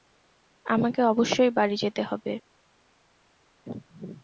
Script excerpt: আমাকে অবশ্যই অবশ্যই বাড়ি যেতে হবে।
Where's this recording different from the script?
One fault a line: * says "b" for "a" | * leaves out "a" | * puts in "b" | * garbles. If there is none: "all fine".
* leaves out "অবশ্যই"